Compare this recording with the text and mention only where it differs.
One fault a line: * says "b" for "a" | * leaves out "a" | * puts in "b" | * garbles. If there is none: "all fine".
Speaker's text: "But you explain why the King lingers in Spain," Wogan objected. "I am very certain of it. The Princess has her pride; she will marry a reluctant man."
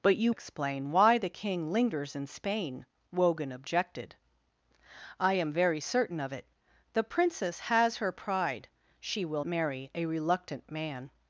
all fine